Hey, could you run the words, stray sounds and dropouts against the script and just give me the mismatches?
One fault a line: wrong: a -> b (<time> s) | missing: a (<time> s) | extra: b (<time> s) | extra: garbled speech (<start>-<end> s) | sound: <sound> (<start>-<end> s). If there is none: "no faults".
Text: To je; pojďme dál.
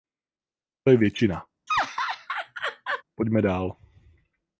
extra: většina (1.0 s)
sound: laugh (1.7-3.0 s)